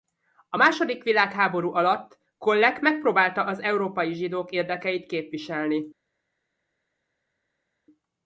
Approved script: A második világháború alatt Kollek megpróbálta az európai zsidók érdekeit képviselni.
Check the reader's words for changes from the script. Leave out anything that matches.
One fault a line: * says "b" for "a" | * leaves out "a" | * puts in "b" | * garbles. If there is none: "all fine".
all fine